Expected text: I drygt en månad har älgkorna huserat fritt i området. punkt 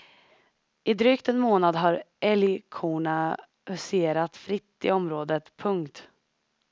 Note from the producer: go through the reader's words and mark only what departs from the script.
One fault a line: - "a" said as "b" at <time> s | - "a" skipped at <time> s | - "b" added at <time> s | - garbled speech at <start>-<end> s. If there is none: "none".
none